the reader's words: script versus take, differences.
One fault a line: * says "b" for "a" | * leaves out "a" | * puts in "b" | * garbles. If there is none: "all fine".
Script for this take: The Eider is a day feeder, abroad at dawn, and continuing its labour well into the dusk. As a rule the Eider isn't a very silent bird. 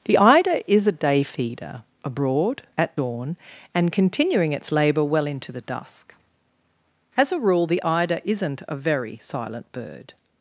all fine